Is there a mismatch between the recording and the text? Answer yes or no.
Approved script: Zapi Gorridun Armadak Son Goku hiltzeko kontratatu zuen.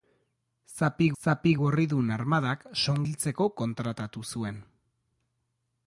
yes